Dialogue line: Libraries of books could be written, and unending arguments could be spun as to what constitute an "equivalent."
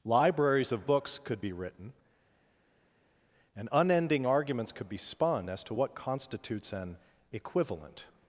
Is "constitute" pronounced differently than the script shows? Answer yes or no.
yes